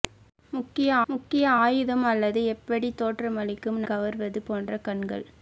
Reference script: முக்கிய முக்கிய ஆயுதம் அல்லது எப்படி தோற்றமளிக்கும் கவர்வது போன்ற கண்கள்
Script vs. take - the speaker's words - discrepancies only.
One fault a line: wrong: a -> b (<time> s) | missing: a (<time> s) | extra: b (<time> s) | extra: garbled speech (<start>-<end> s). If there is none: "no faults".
no faults